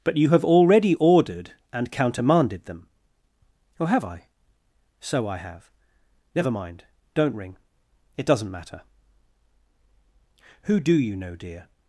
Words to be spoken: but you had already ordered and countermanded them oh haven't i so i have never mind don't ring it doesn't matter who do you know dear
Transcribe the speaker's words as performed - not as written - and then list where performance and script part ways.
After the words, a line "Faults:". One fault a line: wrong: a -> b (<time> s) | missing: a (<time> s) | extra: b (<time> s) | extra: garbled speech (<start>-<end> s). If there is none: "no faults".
but you have already ordered and countermanded them oh have i so i have never mind don't ring it doesn't matter who do you know dear
Faults:
wrong: had -> have (0.3 s)
wrong: haven't -> have (3.9 s)